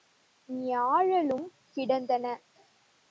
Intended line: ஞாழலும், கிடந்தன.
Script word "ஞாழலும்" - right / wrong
right